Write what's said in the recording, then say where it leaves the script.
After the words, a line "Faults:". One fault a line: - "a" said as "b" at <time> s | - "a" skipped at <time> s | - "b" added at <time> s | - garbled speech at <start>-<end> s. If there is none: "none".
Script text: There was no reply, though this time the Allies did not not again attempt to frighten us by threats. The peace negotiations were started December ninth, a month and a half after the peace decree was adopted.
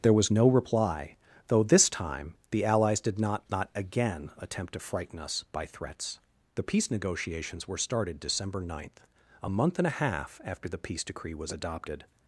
There was no reply, though this time the Allies did not not again attempt to frighten us by threats. The peace negotiations were started December ninth, a month and a half after the peace decree was adopted.
Faults:
none